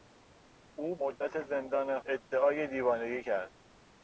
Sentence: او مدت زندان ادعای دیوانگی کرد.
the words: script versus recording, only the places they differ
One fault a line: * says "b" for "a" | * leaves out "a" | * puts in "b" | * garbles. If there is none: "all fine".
all fine